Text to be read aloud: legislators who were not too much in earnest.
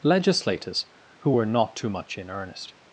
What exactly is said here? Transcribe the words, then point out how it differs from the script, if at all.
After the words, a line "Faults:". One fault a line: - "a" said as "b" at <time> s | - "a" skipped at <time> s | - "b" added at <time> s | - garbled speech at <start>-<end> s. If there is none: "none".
legislators who were not too much in earnest.
Faults:
none